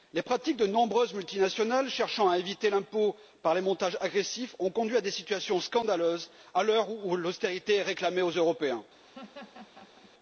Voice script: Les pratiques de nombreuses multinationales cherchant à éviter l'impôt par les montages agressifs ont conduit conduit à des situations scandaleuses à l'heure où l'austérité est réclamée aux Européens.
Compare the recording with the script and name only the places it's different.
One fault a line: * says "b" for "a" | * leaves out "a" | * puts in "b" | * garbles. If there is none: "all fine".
* leaves out "conduit"